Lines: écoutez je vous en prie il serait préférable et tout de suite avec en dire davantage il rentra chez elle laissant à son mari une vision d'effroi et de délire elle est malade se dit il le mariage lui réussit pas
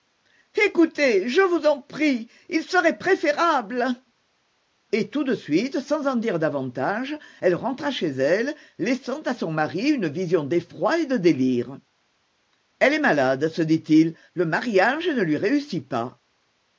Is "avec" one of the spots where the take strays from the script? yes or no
yes